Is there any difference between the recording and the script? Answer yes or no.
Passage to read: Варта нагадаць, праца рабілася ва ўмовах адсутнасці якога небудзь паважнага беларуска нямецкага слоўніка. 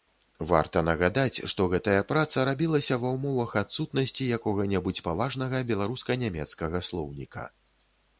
yes